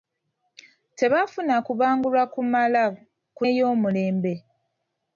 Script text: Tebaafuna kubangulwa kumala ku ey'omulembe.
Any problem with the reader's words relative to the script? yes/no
no